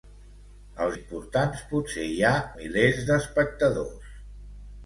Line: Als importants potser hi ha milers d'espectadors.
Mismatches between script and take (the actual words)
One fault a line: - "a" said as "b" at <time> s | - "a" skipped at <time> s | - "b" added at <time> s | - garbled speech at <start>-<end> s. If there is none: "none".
none